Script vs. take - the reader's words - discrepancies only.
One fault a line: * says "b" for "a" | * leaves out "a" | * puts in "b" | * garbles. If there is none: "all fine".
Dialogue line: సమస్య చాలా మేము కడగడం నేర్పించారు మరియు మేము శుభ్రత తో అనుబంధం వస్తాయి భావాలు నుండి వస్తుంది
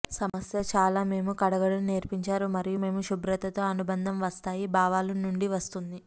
all fine